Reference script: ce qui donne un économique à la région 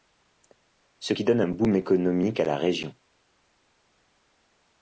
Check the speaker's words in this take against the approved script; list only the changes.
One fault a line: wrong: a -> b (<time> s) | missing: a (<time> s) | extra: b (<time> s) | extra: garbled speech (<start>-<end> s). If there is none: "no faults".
extra: boom (1.5 s)